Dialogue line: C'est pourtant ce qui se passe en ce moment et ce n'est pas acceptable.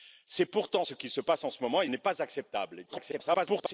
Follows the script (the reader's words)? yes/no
no